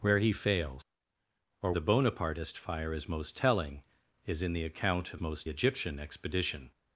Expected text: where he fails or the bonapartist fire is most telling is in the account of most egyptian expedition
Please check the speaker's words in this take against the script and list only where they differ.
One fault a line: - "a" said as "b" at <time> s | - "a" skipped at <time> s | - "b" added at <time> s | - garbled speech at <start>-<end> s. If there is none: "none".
none